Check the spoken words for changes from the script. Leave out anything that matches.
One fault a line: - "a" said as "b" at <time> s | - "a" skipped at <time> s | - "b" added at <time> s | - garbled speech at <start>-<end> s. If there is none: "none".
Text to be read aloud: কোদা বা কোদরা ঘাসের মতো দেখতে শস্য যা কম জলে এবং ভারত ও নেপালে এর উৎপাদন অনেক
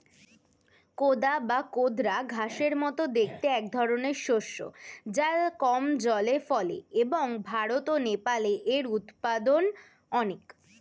- "একধরনের" added at 3.6 s
- "ফলে" added at 6.5 s